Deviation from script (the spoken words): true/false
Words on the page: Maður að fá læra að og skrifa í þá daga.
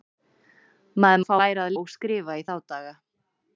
false